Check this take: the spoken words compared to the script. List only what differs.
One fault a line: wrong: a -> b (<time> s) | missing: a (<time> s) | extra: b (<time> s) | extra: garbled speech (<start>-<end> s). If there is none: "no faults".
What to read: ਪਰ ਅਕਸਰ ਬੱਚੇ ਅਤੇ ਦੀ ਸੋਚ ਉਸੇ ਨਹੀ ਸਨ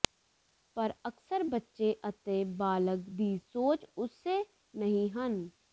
extra: ਬਾਲਗ (2.6 s)
wrong: ਸਨ -> ਹਨ (5.1 s)